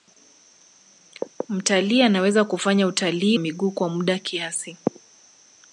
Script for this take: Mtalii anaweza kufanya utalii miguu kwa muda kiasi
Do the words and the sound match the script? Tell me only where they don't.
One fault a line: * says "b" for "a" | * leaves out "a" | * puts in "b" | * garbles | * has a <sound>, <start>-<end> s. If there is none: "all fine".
all fine